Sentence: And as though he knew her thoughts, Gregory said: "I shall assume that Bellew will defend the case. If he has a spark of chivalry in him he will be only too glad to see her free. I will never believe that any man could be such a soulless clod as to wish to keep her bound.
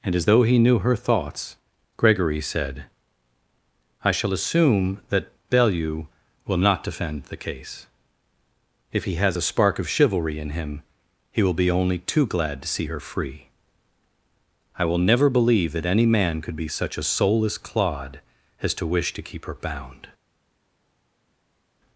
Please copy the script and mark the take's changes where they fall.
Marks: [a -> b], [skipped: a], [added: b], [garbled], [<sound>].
And as though he knew her thoughts, Gregory said: "I shall assume that Bellew will [added: not] defend the case. If he has a spark of chivalry in him he will be only too glad to see her free. I will never believe that any man could be such a soulless clod as to wish to keep her bound.